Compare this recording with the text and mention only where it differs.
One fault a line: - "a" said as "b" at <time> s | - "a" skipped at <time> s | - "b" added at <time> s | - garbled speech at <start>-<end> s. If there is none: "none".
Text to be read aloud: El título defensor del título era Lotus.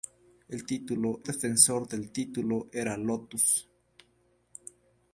none